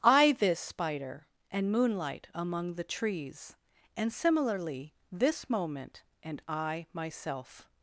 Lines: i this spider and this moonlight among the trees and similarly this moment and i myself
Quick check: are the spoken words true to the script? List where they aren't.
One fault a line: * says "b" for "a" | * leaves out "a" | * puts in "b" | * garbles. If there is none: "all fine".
* leaves out "this"